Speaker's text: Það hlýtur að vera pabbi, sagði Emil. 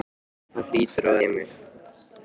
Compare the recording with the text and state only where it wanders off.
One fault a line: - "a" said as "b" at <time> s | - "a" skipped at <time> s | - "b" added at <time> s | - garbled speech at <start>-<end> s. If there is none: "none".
- "vera pabbi sagði" skipped at 1.2 s